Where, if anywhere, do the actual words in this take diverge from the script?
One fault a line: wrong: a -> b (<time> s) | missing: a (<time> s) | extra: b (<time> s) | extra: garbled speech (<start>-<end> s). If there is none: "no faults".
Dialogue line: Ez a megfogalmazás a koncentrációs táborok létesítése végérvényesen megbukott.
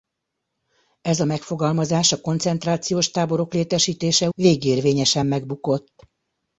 no faults